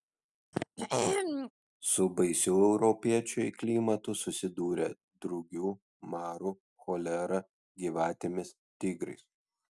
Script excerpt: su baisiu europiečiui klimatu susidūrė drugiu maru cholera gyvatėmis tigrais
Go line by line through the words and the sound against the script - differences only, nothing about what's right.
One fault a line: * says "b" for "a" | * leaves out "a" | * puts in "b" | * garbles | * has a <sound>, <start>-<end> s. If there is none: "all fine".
* has a throat clearing, 0.5-1.5 s